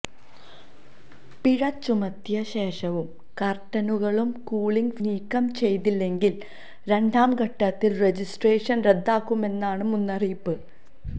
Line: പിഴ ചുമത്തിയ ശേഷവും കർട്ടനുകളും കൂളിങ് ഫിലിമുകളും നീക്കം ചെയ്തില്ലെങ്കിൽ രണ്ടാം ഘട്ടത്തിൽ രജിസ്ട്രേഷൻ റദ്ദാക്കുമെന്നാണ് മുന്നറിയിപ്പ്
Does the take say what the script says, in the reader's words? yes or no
no